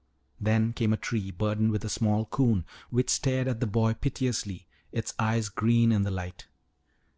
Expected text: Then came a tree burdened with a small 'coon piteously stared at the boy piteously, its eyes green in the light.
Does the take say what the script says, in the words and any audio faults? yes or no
no